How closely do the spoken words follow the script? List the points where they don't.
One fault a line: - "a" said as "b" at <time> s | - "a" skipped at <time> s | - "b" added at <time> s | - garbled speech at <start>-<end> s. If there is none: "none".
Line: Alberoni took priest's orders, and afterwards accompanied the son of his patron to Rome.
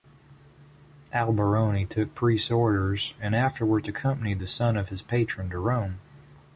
none